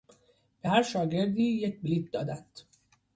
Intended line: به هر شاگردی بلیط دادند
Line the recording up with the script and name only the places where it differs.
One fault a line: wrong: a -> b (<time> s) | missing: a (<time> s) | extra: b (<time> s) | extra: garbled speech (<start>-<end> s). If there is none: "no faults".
extra: یک (1.4 s)